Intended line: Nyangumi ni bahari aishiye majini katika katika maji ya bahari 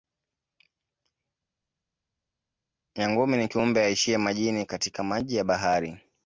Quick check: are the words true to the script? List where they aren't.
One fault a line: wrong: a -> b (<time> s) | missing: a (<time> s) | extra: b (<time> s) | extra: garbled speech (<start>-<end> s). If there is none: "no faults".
wrong: bahari -> kiumbe (3.5 s)
missing: katika (5.0 s)